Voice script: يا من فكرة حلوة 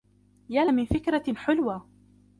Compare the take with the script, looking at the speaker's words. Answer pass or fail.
pass